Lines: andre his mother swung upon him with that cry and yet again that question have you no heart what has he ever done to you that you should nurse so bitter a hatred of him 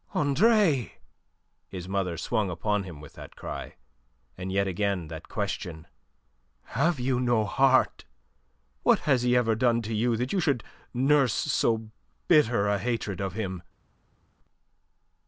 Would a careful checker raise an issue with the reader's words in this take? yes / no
no